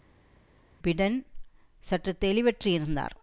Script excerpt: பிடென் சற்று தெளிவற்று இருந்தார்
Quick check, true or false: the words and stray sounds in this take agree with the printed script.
true